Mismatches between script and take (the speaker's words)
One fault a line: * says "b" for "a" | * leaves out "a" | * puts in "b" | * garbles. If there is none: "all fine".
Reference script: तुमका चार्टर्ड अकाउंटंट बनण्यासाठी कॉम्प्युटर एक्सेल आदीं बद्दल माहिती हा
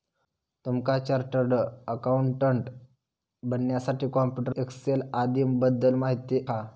all fine